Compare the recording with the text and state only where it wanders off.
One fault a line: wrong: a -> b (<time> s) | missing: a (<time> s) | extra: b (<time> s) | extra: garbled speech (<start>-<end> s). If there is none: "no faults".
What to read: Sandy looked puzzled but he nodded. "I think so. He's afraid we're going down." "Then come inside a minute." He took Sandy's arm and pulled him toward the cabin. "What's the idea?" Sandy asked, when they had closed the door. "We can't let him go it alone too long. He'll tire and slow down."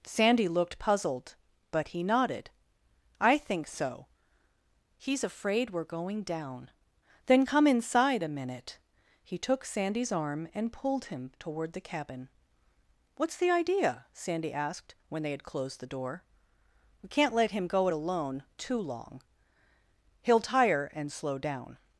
no faults